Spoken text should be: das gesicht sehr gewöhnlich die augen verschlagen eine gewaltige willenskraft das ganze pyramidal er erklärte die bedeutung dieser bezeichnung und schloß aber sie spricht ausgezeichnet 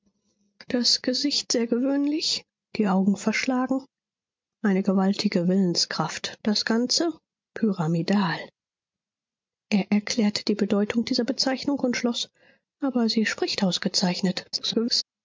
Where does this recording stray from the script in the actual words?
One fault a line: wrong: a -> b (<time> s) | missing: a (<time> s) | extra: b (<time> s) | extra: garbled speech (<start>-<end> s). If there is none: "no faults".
extra: garbled speech (14.5-15.0 s)